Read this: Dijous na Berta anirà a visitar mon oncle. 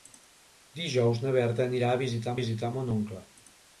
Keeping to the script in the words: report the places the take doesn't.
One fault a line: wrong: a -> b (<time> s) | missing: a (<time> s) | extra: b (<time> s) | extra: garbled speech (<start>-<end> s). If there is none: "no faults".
extra: visitar (2.4 s)